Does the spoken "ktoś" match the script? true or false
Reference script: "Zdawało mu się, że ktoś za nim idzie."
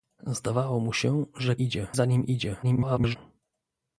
false